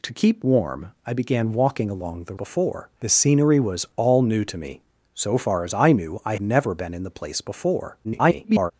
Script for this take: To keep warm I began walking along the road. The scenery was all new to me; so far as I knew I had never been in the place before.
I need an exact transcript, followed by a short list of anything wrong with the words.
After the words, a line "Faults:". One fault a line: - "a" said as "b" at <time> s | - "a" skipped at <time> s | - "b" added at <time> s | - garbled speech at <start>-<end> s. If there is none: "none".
To keep warm I began walking along the before. The scenery was all new to me; so far as I knew I never been in the place before. [garbled]
Faults:
- "road" said as "before" at 2.3 s
- "had" skipped at 6.4 s
- garbled speech at 8.0-8.7 s